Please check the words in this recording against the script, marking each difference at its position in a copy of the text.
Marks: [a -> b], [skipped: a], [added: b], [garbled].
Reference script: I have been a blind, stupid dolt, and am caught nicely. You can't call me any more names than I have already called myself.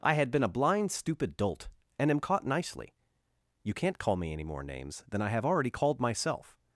I [have -> had] been a blind, stupid dolt, and am caught nicely. You can't call me any more names than I have already called myself.